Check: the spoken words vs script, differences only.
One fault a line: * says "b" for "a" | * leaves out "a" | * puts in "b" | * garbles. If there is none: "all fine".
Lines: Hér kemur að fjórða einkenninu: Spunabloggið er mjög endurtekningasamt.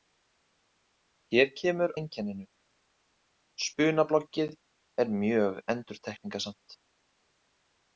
* leaves out "að fjórða"